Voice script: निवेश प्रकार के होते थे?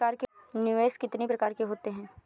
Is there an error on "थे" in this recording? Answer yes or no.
yes